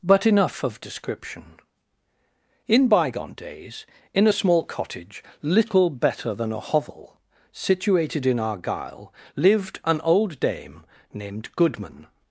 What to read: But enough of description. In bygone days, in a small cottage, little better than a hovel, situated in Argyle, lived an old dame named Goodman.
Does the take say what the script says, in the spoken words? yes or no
yes